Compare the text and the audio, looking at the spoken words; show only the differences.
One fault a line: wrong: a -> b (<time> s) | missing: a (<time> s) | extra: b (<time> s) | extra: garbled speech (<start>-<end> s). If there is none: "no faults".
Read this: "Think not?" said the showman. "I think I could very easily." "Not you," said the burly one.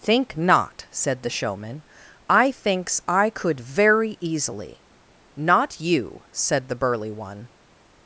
wrong: think -> thinks (2.5 s)